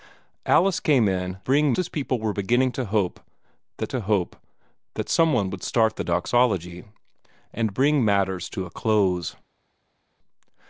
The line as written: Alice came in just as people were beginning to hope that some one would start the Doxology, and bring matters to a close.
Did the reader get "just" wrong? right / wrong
wrong